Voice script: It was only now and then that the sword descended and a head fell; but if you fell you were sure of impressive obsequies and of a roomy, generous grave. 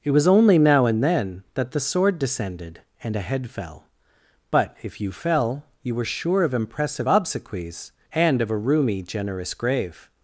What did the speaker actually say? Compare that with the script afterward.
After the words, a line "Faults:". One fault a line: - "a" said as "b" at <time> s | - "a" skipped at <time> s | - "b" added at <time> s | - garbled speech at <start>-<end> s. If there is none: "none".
It was only now and then that the sword descended and a head fell; but if you fell you were sure of impressive obsequies and of a roomy, generous grave.
Faults:
none